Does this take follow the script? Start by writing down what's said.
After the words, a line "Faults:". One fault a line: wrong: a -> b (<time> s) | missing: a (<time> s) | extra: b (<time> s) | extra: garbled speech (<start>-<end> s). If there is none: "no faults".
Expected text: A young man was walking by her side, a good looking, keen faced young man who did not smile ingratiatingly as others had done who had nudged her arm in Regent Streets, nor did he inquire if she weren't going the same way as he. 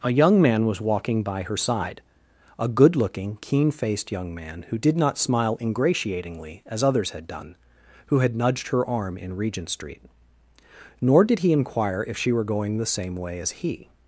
A young man was walking by her side, a good looking, keen faced young man who did not smile ingratiatingly as others had done who had nudged her arm in Regent Street, nor did he inquire if she were going the same way as he.
Faults:
wrong: Streets -> Street (9.7 s)
wrong: weren't -> were (12.3 s)